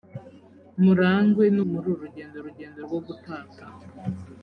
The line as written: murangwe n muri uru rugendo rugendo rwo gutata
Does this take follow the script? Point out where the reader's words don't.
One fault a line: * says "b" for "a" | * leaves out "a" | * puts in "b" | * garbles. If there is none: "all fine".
all fine